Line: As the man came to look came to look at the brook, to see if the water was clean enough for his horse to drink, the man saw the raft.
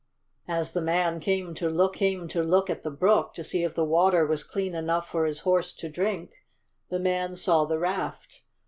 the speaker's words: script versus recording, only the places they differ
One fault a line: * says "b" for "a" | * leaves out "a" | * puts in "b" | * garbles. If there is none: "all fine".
all fine